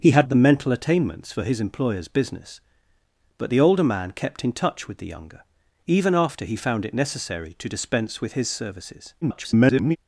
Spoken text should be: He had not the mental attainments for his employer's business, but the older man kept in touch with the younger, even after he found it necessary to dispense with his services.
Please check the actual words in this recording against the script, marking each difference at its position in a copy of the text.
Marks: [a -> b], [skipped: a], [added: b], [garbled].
He had [skipped: not] the mental attainments for his employer's business, but the older man kept in touch with the younger, even after he found it necessary to dispense with his services. [garbled]